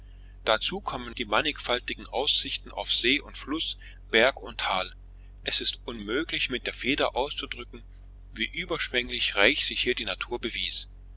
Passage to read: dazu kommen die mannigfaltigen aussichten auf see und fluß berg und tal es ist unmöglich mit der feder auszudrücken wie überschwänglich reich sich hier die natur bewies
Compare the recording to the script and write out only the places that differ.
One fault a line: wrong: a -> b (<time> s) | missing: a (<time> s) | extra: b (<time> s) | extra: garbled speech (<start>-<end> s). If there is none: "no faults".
no faults